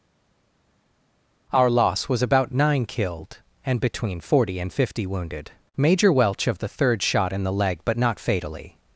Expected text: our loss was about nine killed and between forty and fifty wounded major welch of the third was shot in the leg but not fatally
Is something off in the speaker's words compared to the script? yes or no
yes